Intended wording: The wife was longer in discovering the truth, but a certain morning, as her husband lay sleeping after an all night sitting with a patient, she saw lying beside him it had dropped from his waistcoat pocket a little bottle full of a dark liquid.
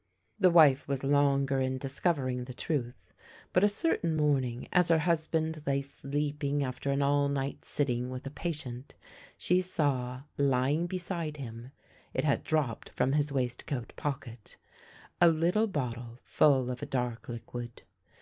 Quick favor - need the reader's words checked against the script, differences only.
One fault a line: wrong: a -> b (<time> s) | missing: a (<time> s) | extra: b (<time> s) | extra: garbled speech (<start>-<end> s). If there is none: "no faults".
no faults